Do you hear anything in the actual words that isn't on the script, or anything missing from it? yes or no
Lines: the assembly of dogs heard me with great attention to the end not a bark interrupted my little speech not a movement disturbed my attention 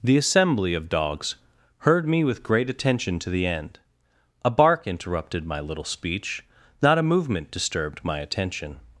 yes